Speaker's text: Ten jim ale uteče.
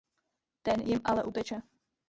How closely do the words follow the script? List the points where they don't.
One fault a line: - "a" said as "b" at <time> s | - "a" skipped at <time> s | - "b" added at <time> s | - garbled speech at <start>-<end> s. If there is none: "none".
none